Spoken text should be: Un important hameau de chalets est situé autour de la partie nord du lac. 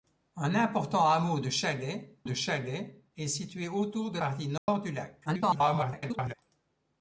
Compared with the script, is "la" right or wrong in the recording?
wrong